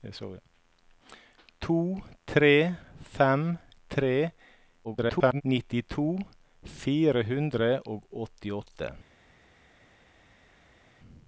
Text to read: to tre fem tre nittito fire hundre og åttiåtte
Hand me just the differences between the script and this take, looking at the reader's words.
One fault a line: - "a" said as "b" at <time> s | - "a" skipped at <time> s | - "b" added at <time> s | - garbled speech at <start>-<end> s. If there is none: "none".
- garbled speech at 4.8-5.4 s